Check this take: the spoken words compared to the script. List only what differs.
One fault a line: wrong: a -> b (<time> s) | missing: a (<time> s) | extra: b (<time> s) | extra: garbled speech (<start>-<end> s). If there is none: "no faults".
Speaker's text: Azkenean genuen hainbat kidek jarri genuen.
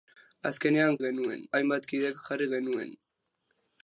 no faults